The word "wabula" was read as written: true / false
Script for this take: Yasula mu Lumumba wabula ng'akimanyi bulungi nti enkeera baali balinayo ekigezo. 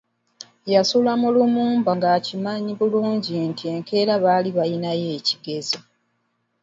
false